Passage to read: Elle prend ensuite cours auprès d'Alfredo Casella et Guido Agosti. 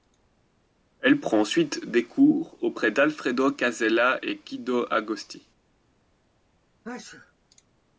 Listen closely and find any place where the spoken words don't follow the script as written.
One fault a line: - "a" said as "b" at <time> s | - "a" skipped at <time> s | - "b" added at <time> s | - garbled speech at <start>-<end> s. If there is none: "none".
- "des" added at 1.9 s